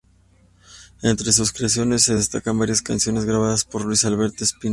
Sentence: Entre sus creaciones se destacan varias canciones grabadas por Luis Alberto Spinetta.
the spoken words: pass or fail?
pass